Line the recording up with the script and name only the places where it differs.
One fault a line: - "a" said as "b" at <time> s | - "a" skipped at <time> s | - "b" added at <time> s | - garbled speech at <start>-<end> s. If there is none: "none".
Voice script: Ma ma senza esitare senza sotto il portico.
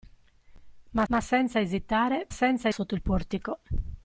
none